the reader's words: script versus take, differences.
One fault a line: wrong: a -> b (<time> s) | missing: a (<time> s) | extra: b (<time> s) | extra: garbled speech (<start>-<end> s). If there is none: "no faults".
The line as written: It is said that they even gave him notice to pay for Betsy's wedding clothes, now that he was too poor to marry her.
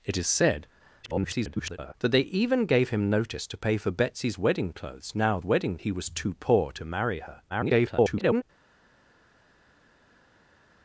extra: garbled speech (1.0-1.9 s)
wrong: that -> wedding (5.4 s)
extra: garbled speech (7.5-8.4 s)